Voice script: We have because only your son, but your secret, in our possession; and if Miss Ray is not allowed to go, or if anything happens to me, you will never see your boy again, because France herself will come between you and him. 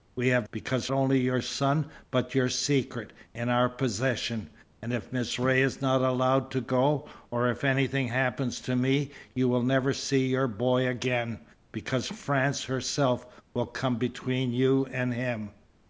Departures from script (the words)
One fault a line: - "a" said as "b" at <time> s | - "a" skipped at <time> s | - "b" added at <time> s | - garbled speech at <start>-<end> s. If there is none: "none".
none